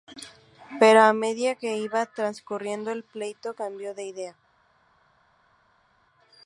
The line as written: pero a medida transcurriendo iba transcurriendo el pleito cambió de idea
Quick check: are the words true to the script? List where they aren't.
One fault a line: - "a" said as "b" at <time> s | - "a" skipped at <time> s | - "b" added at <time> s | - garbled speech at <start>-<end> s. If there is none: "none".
- "transcurriendo" said as "que" at 1.5 s